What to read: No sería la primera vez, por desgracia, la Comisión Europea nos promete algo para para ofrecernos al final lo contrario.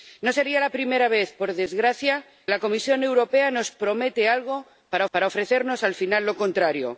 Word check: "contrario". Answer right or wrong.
right